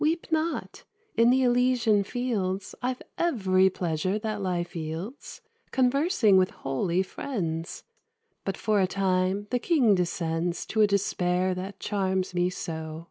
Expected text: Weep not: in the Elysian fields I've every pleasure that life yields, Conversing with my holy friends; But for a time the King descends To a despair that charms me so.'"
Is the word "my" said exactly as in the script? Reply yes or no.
no